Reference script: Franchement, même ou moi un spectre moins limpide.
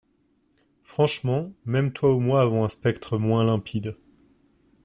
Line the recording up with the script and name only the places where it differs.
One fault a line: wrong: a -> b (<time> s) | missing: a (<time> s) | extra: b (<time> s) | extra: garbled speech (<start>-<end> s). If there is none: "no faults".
extra: toi (1.9 s)
extra: avons (2.4 s)